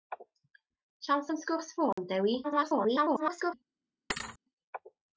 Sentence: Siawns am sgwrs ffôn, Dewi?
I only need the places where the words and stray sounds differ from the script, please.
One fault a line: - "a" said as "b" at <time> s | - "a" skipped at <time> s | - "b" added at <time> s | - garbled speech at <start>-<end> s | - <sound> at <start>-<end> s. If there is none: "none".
- dropout at 1.9-2.0 s
- garbled speech at 2.4-3.5 s
- thud at 4.1-4.4 s